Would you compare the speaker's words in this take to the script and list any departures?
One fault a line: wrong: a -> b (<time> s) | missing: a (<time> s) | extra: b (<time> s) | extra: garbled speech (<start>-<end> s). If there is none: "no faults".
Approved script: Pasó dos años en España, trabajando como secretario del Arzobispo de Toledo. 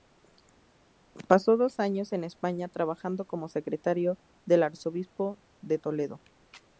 no faults